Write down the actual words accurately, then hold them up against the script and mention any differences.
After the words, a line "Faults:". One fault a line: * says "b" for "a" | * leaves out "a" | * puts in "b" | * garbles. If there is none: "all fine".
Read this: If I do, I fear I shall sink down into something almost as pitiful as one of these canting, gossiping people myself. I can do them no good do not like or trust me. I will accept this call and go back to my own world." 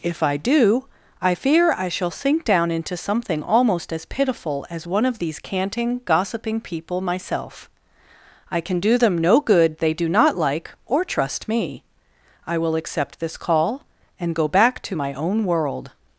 If I do, I fear I shall sink down into something almost as pitiful as one of these canting, gossiping people myself. I can do them no good they do not like or trust me. I will accept this call and go back to my own world."
Faults:
* puts in "they"